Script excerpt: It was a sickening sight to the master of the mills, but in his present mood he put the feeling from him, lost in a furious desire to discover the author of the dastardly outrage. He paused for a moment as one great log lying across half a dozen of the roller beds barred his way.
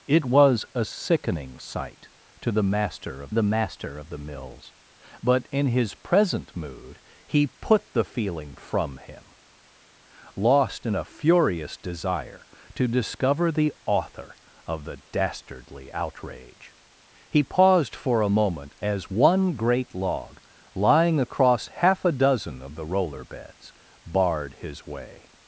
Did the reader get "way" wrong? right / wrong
right